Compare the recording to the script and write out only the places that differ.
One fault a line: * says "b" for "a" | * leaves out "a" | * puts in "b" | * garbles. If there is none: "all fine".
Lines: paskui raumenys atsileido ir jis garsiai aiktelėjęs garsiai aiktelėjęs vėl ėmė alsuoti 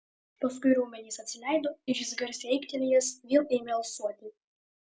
* leaves out "garsiai aiktelėjęs"